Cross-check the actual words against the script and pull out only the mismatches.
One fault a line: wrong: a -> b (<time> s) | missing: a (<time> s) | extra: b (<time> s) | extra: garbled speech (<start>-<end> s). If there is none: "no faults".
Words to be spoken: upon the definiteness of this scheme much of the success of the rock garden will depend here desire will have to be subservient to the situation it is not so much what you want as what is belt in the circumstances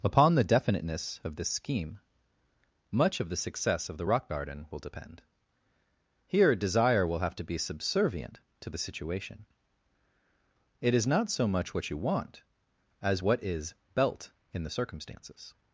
no faults